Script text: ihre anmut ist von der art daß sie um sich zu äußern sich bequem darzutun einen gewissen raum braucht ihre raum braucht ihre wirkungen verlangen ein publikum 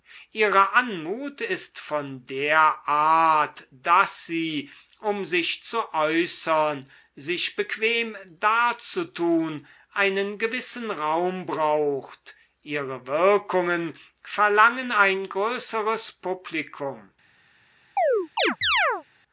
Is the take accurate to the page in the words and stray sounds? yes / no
no